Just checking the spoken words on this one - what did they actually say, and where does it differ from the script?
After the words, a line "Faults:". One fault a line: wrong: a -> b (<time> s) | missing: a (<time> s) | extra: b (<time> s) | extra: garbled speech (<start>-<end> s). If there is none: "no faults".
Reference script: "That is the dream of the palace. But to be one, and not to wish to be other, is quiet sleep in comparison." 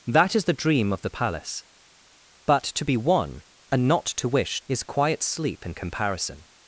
"That is the dream of the palace. But to be one, and not to wish is quiet sleep in comparison."
Faults:
missing: to be other (4.6 s)